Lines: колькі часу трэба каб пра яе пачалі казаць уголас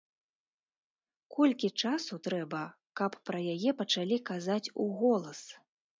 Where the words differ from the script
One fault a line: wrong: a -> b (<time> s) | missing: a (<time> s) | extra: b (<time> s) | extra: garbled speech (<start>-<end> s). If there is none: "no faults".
no faults